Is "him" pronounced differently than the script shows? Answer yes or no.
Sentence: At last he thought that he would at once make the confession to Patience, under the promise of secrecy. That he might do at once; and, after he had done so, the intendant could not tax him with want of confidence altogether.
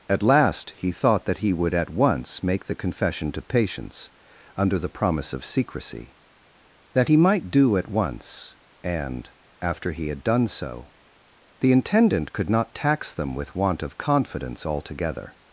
yes